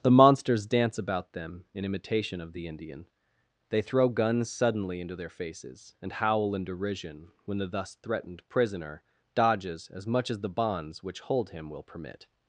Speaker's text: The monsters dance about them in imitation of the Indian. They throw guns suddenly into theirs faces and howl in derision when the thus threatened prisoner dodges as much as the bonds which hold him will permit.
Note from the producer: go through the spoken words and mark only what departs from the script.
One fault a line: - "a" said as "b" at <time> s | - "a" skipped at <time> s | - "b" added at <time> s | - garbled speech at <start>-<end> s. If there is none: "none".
- "theirs" said as "their" at 5.2 s